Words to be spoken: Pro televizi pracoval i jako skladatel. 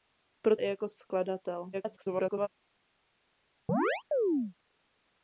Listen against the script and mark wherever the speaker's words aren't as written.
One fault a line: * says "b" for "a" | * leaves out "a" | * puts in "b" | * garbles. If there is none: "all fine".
* leaves out "televizi pracoval"
* garbles